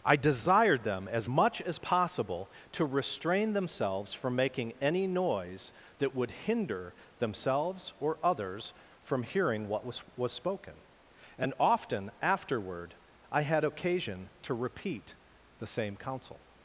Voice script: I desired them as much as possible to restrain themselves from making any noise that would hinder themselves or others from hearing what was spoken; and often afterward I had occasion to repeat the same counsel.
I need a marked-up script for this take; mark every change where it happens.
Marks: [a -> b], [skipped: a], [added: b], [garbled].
I desired them as much as possible to restrain themselves from making any noise that would hinder themselves or others from hearing what was [added: was] spoken; and often afterward I had occasion to repeat the same counsel.